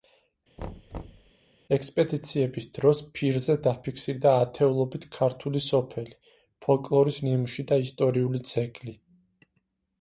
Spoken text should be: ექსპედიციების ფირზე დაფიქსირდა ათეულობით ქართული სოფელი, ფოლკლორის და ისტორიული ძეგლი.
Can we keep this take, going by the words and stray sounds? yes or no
no